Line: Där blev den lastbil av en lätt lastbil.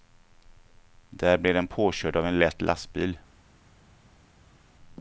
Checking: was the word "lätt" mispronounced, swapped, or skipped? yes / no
no